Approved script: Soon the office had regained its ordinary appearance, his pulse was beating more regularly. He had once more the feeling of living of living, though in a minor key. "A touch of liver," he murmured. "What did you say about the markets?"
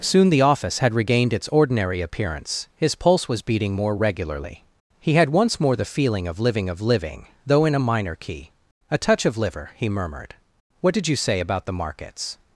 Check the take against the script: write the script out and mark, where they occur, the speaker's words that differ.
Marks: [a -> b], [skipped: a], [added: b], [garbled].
Soon the office had regained its ordinary appearance, his pulse was beating more regularly. He had once more the feeling of living of living, though in a minor key. "A touch of liver," he murmured. "What did you say about the markets?"